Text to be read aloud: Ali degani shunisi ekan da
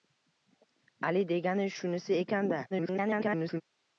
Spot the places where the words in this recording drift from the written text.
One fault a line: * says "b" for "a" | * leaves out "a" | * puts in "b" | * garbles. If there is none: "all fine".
* garbles